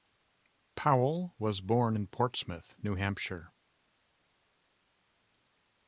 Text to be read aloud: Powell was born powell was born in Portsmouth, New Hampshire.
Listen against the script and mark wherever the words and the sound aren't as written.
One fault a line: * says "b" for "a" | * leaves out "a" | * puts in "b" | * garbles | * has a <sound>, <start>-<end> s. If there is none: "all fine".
* leaves out "powell was born"